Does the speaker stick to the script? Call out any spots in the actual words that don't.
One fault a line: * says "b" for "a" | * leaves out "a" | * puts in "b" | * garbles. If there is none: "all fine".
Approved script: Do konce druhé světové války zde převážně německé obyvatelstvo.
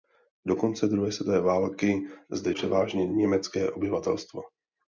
all fine